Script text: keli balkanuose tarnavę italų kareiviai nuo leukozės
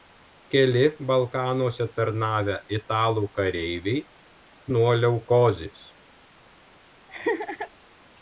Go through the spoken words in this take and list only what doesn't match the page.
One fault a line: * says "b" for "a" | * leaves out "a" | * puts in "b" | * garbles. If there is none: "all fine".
all fine